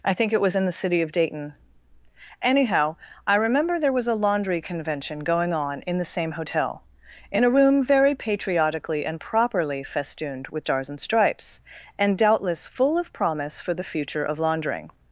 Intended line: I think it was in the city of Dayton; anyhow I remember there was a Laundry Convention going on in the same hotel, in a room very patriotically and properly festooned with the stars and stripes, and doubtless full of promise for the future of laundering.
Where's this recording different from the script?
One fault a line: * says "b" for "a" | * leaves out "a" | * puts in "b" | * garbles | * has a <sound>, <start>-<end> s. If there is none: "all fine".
* leaves out "the"